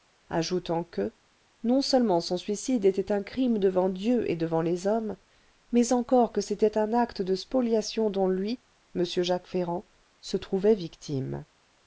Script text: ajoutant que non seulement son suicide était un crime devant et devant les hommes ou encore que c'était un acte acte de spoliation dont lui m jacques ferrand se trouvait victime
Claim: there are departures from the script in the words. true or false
true